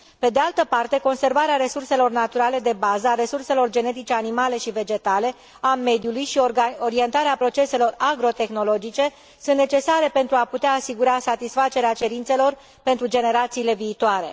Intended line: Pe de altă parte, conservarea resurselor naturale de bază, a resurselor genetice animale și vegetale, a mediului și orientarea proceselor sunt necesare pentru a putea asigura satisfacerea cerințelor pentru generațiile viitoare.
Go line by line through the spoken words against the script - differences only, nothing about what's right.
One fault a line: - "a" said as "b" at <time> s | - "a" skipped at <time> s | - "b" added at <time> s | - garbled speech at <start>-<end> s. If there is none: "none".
- "agrotehnologice" added at 8.0 s